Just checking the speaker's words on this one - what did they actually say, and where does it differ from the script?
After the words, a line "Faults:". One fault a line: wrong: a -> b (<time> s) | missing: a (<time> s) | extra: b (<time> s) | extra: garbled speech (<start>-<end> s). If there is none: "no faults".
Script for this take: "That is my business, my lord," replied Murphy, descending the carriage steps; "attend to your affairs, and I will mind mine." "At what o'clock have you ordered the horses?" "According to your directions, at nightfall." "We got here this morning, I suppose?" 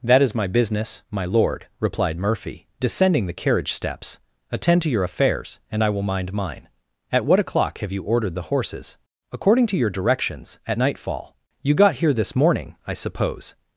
"That is my business, my lord," replied Murphy, descending the carriage steps; "attend to your affairs, and I will mind mine." "At what o'clock have you ordered the horses?" "According to your directions, at nightfall." "You got here this morning, I suppose?"
Faults:
wrong: We -> You (11.6 s)